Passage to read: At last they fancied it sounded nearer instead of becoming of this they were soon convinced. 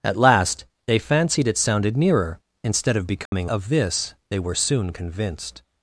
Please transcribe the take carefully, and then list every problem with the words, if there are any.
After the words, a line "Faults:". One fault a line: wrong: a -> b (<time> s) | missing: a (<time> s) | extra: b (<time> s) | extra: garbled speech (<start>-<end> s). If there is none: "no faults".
At last they fancied it sounded nearer instead of becoming of this they were soon convinced.
Faults:
no faults